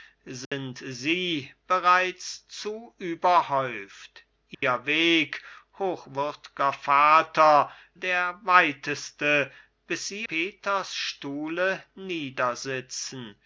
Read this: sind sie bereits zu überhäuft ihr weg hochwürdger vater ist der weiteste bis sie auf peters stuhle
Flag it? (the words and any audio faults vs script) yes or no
yes